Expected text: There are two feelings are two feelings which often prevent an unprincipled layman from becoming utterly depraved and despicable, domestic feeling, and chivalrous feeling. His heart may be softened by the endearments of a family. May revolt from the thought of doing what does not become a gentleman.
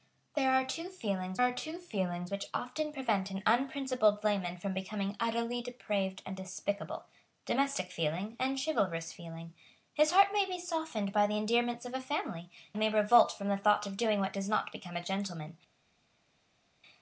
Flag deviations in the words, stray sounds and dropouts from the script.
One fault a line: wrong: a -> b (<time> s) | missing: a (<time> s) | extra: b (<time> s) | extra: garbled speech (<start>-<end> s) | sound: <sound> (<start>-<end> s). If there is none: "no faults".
no faults